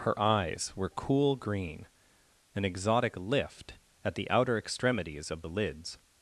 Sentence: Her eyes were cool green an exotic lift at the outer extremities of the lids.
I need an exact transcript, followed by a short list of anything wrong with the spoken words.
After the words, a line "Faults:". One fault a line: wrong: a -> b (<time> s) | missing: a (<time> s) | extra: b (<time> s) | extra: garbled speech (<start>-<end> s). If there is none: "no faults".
Her eyes were cool green an exotic lift at the outer extremities of the lids.
Faults:
no faults